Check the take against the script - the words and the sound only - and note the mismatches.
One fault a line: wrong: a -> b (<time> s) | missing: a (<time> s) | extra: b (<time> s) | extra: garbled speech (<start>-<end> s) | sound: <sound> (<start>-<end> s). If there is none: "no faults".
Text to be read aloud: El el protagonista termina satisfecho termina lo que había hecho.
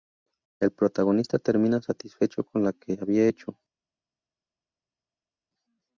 missing: el (0.7 s)
wrong: termina -> con (2.4 s)